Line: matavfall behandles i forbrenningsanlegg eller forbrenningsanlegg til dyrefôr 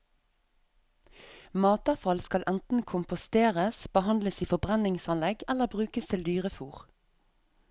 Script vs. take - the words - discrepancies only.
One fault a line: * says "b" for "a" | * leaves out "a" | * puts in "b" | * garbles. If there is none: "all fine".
* puts in "skal enten komposteres"
* says "brukes" for "forbrenningsanlegg"